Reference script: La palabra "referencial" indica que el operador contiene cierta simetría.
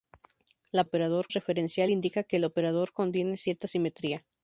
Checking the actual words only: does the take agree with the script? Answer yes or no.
no